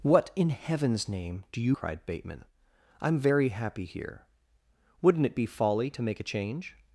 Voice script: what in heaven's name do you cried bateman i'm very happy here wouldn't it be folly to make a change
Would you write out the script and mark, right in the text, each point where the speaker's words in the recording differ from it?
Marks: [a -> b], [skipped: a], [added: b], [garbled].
what in heaven's name do you cried bateman i'm very happy here wouldn't it be folly to make a change